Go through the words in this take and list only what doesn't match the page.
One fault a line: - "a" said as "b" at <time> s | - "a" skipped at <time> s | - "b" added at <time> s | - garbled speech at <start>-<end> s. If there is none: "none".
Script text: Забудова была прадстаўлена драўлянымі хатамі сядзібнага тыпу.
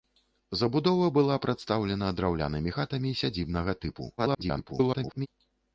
- garbled speech at 4.2-5.3 s